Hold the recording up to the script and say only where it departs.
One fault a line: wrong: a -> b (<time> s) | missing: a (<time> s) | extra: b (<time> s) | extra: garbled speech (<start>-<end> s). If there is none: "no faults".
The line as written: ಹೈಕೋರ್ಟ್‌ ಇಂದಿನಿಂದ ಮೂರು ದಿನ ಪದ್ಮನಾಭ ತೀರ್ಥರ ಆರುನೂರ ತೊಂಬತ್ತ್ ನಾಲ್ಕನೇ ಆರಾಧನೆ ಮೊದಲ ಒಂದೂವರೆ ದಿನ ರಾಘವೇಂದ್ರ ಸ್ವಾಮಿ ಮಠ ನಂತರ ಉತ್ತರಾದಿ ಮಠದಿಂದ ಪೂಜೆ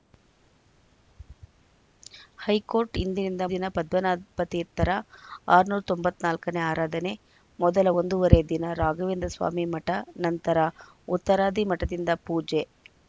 missing: ಮೂರು (3.4 s)